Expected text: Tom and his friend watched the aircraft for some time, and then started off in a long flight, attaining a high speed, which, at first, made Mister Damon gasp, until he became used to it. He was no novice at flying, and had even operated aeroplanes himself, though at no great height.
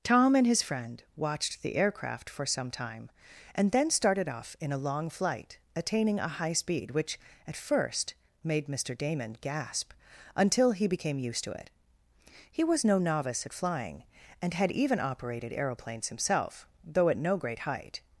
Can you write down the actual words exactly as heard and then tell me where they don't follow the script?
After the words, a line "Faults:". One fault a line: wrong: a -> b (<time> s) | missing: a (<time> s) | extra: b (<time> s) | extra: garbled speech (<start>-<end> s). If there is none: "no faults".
Tom and his friend watched the aircraft for some time, and then started off in a long flight, attaining a high speed, which, at first, made Mister Damon gasp, until he became used to it. He was no novice at flying, and had even operated aeroplanes himself, though at no great height.
Faults:
no faults